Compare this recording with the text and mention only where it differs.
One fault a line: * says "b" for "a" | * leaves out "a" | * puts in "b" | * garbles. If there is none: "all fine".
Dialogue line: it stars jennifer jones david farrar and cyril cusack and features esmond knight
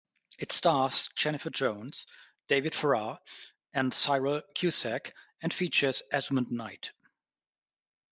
all fine